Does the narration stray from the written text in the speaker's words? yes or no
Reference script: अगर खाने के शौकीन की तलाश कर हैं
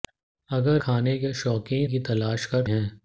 no